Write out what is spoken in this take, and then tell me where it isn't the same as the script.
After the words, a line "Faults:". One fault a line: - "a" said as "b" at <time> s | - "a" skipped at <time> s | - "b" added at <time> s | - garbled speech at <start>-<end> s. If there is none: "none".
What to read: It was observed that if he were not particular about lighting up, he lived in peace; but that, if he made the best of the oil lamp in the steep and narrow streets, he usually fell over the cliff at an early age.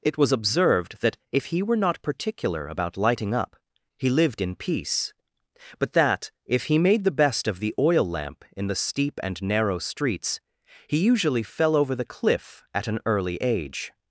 It was observed that if he were not particular about lighting up, he lived in peace; but that, if he made the best of the oil lamp in the steep and narrow streets, he usually fell over the cliff at an early age.
Faults:
none